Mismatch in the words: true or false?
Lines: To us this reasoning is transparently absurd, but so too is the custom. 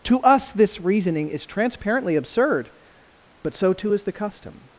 false